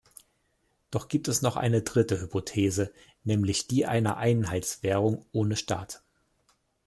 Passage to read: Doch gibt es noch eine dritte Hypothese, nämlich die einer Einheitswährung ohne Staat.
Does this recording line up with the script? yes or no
yes